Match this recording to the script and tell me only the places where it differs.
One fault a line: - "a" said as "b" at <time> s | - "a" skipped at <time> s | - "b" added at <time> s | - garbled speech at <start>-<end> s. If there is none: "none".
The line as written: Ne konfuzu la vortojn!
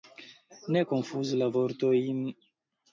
none